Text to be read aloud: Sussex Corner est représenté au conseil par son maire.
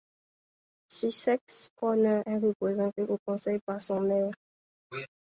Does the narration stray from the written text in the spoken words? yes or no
no